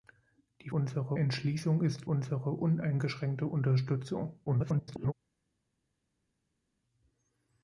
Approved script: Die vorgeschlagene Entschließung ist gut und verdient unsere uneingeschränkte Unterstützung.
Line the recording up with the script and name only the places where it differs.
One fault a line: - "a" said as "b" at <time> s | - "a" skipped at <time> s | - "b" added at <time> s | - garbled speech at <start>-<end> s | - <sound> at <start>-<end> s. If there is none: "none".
- "vorgeschlagene" said as "unsere" at 0.7 s
- "gut und verdient" skipped at 2.1 s
- garbled speech at 4.5-5.1 s